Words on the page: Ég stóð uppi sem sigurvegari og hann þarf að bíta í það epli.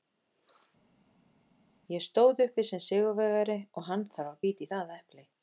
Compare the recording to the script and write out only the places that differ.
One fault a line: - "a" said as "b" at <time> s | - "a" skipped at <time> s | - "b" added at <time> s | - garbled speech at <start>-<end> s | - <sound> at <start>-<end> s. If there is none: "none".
none